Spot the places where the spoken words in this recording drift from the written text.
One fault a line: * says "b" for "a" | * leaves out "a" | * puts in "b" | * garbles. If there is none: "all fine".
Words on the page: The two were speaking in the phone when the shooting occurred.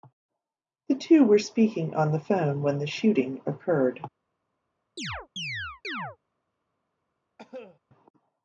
* says "on" for "in"